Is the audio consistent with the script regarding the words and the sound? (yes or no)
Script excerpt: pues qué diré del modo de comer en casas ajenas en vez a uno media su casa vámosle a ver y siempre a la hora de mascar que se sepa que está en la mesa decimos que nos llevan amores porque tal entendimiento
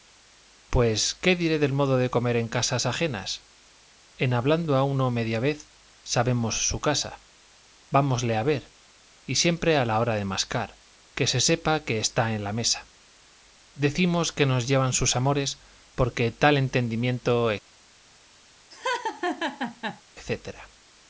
no